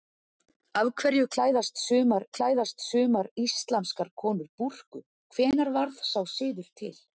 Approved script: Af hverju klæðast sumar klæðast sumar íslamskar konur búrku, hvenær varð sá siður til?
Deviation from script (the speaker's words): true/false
false